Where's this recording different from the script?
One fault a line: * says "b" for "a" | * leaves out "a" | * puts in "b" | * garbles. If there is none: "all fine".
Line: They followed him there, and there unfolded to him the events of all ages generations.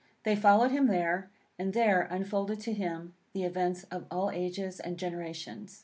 * puts in "and"